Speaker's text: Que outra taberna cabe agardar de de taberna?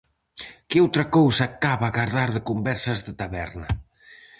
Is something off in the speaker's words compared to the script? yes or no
yes